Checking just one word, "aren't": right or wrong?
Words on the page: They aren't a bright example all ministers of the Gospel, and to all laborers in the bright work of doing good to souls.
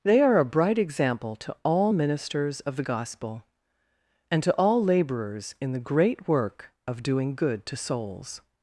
wrong